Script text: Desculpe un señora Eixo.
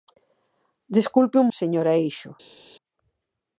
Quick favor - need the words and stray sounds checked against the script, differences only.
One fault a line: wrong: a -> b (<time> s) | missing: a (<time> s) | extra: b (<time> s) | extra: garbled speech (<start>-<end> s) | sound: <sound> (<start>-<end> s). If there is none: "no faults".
no faults